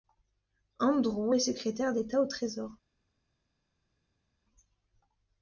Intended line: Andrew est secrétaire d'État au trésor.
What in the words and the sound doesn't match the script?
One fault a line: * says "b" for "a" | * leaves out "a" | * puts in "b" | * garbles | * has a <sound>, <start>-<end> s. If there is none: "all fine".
all fine